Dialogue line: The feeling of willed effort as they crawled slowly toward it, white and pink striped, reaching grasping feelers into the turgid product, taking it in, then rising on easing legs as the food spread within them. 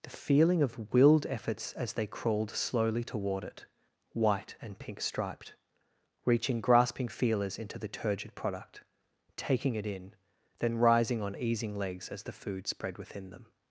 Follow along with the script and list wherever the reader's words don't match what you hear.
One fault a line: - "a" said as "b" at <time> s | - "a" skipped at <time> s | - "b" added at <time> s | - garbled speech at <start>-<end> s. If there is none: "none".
- "effort" said as "efforts" at 1.3 s